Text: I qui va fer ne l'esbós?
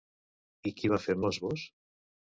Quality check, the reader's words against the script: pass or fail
fail